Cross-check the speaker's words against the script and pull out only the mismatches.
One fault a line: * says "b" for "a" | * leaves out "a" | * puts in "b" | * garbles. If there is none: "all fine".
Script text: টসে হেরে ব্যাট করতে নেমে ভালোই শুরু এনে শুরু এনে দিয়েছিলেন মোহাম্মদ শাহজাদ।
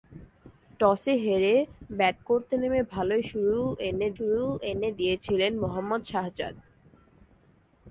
all fine